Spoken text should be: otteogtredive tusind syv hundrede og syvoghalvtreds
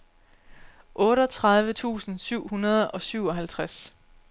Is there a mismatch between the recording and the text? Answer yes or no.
no